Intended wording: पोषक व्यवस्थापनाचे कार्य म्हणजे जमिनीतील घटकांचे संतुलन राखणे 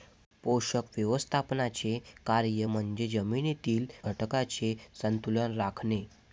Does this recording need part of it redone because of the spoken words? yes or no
no